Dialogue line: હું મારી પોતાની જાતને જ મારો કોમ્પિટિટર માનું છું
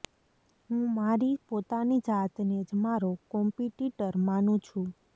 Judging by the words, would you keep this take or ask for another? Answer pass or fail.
pass